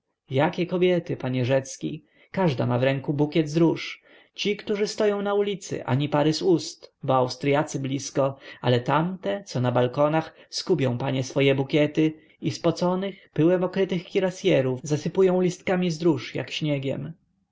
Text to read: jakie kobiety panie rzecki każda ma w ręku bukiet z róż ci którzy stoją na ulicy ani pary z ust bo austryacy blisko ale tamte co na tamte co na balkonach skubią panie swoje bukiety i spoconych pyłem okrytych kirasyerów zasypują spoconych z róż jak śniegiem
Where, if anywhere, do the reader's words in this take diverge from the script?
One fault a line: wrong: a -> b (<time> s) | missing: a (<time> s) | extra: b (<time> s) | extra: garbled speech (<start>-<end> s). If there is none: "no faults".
missing: tamte co na (9.7 s)
wrong: spoconych -> listkami (15.4 s)